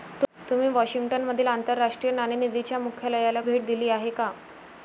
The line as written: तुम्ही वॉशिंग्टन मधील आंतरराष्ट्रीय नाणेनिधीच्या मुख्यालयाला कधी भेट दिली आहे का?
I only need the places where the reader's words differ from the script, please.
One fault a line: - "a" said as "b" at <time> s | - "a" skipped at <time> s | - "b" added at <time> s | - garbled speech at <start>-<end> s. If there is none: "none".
- "कधी" skipped at 3.4 s